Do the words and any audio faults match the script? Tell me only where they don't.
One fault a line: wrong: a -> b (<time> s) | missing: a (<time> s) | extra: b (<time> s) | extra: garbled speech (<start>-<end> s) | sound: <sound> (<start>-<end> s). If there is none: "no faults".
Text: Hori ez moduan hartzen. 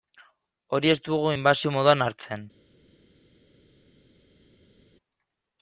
extra: dugu inbasio (1.1 s)